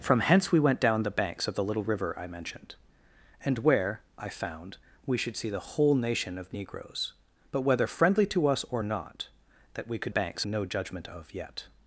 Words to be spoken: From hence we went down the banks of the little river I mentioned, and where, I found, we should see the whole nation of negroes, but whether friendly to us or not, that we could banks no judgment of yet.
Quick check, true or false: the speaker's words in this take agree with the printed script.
true